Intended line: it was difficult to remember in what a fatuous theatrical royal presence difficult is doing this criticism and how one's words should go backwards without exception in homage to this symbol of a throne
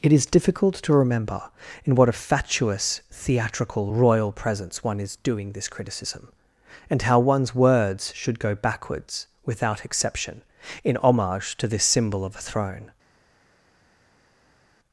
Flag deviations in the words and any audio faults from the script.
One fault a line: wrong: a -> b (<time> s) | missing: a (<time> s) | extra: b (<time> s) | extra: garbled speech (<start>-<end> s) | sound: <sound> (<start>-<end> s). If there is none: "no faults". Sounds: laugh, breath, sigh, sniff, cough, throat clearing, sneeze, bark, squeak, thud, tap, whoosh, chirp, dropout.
wrong: was -> is (0.1 s)
wrong: difficult -> one (4.8 s)